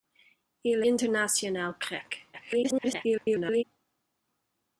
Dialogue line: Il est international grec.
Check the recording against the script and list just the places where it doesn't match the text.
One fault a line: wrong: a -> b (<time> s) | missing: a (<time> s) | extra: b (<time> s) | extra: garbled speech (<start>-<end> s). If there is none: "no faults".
missing: est (0.8 s)
extra: garbled speech (2.3-3.6 s)